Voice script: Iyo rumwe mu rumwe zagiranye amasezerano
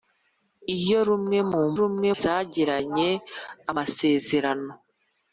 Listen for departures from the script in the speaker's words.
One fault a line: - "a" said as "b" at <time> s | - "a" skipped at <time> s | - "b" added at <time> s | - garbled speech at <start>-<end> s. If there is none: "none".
none